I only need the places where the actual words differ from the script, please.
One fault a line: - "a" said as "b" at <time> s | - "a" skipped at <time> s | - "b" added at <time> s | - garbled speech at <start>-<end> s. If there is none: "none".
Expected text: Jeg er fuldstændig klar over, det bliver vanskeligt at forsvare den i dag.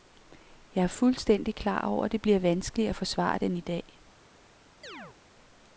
none